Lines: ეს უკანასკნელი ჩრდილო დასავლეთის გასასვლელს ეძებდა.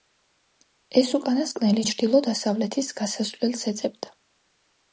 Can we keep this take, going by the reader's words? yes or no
yes